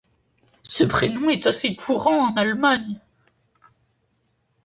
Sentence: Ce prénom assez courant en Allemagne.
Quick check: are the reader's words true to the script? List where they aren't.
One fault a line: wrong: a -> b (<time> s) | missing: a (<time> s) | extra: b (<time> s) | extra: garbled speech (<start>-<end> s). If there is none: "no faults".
extra: est (1.3 s)